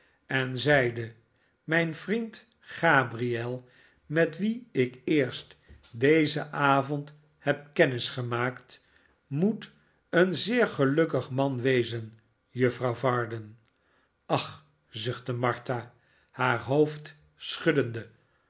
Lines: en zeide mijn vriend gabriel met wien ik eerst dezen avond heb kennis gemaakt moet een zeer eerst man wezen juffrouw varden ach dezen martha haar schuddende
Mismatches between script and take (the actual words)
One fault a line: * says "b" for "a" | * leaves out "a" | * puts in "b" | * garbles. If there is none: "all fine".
* says "gelukkig" for "eerst"
* says "zuchtte" for "dezen"
* puts in "hoofd"